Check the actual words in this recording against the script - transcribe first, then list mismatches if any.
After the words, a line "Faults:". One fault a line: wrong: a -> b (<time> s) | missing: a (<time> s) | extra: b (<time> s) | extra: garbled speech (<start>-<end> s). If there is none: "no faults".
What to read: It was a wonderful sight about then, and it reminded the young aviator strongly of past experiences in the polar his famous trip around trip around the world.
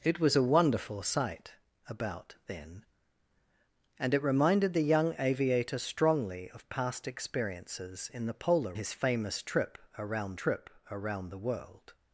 It was a wonderful sight about then, and it reminded the young aviator strongly of past experiences in the polar his famous trip around trip around the world.
Faults:
no faults